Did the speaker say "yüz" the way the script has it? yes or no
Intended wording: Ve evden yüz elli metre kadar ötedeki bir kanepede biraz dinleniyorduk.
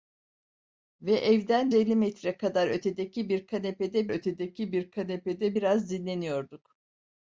no